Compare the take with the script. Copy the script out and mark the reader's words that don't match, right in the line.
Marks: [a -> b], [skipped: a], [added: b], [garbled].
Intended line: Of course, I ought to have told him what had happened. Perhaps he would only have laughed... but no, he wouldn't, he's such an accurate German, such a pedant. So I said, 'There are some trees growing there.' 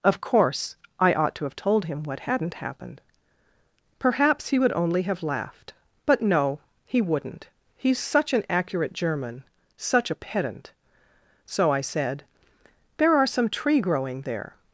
Of course, I ought to have told him what [had -> hadn't] happened. Perhaps he would only have laughed... but no, he wouldn't, he's such an accurate German, such a pedant. So I said, 'There are some [trees -> tree] growing there.'